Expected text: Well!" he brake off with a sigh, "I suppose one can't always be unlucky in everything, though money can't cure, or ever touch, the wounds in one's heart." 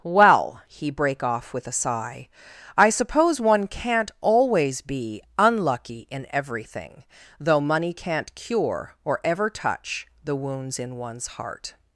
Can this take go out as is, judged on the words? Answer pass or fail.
pass